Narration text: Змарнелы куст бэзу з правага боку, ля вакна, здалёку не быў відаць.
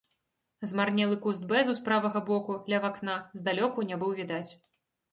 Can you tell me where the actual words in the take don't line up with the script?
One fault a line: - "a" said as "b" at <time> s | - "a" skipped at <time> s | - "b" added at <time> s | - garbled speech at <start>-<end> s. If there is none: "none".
none